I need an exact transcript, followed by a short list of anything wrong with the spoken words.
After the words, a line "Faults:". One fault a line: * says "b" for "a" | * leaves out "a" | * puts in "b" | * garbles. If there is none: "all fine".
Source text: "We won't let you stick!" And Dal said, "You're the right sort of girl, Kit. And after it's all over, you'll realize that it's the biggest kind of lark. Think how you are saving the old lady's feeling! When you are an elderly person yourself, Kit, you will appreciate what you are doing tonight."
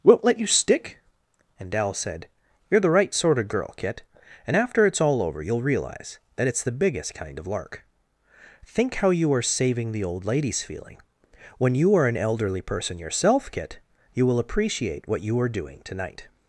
won't let you stick!" And Dal said, "You're the right sort of girl, Kit. And after it's all over, you'll realize that it's the biggest kind of lark. Think how you are saving the old lady's feeling! When you are an elderly person yourself, Kit, you will appreciate what you are doing tonight."
Faults:
* leaves out "We"